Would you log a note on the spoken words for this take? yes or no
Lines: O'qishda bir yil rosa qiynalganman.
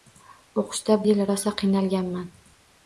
yes